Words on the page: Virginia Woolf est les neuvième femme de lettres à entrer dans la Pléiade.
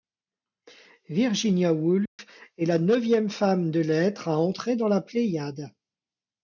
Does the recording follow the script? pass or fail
fail